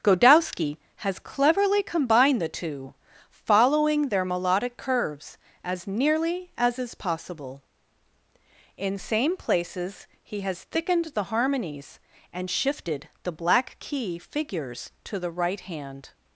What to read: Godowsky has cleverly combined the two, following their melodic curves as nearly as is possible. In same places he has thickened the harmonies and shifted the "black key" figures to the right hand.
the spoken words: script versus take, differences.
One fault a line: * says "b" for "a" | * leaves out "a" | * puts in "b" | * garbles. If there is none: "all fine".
all fine